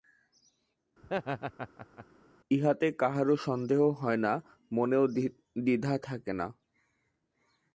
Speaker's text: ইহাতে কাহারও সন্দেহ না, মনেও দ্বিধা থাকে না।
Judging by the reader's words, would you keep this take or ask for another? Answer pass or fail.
fail